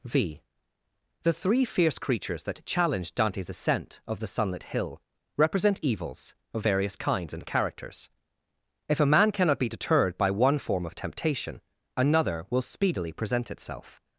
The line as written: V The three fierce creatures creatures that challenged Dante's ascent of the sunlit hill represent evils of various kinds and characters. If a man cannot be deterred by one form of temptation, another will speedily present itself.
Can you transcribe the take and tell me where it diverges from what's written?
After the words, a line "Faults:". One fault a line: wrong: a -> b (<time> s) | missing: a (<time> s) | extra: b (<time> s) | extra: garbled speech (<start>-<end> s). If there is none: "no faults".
V The three fierce creatures that challenged Dante's ascent of the sunlit hill represent evils of various kinds and characters. If a man cannot be deterred by one form of temptation, another will speedily present itself.
Faults:
missing: creatures (2.4 s)